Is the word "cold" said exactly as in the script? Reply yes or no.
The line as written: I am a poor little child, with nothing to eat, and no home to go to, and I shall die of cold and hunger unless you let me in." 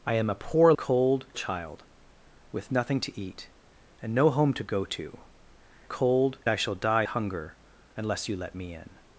no